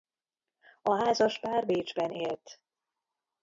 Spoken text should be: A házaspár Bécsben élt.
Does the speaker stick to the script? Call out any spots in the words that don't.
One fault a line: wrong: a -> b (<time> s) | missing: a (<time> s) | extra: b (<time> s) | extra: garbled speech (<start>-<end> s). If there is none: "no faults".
no faults